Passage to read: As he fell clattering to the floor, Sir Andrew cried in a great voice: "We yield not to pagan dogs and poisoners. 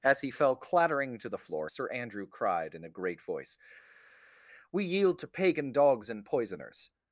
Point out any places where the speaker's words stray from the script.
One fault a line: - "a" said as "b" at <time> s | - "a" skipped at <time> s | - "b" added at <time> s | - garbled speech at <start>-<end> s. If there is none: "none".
- "not" skipped at 5.2 s